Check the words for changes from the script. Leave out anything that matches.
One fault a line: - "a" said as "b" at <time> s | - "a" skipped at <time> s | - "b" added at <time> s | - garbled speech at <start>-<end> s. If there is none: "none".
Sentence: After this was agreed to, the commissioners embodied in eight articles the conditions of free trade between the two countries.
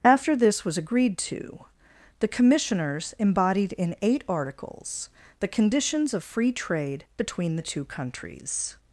none